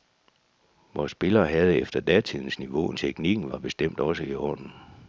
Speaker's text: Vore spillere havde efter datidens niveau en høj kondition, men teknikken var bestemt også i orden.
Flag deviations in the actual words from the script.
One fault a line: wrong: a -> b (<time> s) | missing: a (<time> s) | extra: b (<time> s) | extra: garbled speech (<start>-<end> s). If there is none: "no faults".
missing: høj kondition men (3.0 s)